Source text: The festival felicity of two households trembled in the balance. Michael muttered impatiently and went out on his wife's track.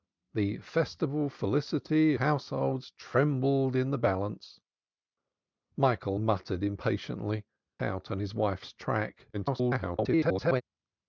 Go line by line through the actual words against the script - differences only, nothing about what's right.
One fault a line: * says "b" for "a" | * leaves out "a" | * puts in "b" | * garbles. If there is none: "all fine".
* leaves out "of two"
* leaves out "and went"
* garbles